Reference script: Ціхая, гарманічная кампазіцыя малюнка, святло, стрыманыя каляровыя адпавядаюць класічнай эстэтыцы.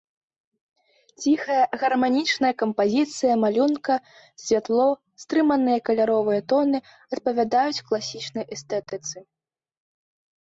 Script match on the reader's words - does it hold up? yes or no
no